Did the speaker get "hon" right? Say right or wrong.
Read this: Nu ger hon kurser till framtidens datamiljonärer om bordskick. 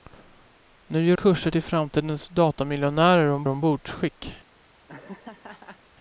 wrong